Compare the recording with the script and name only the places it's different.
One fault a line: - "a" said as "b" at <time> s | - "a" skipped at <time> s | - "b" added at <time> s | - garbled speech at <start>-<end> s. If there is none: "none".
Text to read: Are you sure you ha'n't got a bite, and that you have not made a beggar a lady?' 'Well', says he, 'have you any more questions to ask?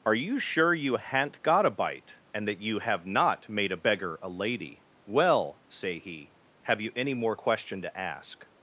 - "says" said as "say" at 5.7 s
- "questions" said as "question" at 7.3 s